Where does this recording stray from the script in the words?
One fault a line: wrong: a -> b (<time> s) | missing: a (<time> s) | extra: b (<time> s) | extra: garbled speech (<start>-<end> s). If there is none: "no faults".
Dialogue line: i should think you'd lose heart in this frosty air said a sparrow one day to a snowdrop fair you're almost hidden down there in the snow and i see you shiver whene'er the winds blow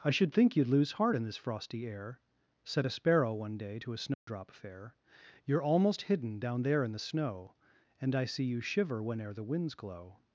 wrong: blow -> glow (9.7 s)